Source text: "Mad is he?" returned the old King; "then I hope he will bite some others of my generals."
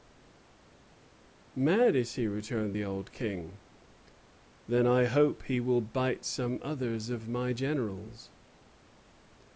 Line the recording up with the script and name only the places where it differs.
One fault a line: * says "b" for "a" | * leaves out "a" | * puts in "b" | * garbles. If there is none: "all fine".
all fine